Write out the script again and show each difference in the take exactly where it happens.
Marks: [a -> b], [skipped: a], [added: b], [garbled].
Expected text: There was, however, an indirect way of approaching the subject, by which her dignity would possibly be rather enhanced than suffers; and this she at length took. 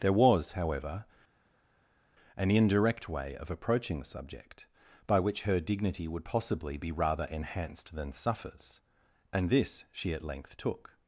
There was, however, an indirect way of approaching the subject, by which her dignity would possibly be rather enhanced than suffers; and this she at length took.